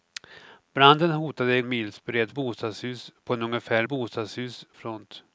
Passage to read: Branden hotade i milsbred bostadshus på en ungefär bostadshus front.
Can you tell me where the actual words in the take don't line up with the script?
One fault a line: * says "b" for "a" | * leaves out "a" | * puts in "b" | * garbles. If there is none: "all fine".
all fine